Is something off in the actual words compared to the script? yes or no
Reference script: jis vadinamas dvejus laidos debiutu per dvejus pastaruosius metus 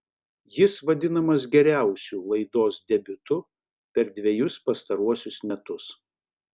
yes